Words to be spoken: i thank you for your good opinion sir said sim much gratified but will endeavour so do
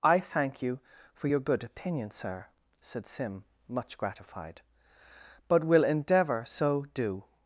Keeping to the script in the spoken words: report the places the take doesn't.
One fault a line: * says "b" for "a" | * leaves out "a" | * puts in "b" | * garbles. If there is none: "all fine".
all fine